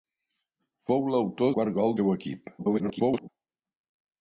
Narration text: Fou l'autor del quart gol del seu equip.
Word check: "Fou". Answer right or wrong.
right